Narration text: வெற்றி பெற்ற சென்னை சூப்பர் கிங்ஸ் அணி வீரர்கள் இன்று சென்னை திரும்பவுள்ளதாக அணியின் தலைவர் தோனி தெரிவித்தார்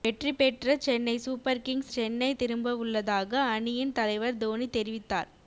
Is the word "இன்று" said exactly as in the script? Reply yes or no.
no